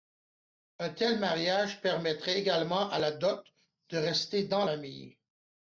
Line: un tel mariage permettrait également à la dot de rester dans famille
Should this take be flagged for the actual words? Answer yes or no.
no